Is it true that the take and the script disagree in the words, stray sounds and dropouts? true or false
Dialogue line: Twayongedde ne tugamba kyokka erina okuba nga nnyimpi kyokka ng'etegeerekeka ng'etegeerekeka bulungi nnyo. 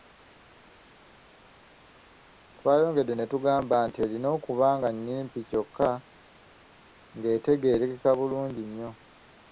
true